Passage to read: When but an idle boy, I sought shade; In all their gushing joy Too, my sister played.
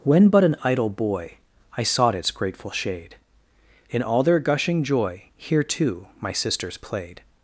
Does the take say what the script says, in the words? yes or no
no